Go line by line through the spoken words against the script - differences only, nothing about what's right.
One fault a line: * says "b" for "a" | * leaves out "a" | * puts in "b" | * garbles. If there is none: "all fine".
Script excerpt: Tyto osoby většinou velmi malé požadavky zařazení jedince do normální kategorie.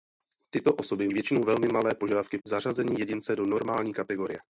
all fine